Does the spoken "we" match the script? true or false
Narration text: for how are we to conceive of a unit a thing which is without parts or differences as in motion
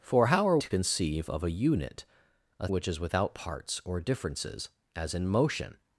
false